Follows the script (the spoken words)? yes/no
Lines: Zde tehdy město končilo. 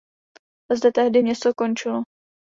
yes